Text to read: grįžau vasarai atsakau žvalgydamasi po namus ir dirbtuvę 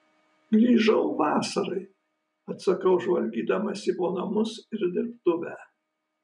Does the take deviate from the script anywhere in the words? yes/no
no